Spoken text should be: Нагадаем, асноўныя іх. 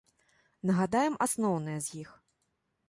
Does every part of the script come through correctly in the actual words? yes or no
no